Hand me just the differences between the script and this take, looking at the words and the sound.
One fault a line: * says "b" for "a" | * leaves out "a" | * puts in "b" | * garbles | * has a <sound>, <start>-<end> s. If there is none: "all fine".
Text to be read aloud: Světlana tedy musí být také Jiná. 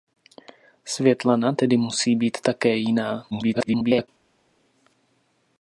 * garbles